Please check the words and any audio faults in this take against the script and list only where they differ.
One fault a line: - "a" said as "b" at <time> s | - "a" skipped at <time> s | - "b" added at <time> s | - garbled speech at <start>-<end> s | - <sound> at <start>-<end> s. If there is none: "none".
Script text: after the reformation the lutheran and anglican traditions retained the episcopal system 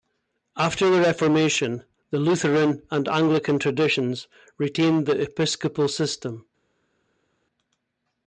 none